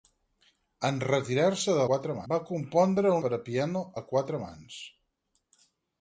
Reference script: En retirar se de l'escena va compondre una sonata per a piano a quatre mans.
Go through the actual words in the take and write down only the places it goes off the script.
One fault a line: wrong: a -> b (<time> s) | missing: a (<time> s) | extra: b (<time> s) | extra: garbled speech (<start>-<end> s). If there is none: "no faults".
wrong: l'escena -> quatre (1.9 s)
missing: una sonata (3.2 s)